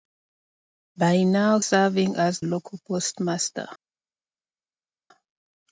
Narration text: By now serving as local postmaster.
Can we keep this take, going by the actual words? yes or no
yes